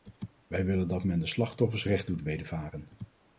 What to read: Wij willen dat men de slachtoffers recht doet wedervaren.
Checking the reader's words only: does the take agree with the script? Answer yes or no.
yes